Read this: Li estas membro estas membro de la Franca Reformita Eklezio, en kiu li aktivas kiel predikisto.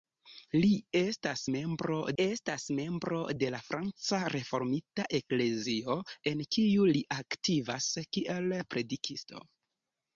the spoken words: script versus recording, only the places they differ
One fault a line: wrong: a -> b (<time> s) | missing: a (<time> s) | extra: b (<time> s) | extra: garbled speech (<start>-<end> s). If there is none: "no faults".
no faults